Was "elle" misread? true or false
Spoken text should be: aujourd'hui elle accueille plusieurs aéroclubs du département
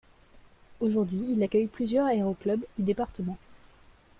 true